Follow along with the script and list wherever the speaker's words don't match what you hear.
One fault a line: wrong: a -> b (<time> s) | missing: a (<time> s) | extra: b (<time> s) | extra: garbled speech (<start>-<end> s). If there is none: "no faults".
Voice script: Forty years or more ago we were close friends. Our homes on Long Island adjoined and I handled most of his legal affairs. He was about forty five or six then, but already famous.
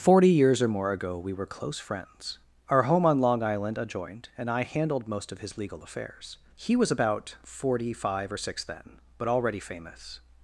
wrong: homes -> home (2.8 s)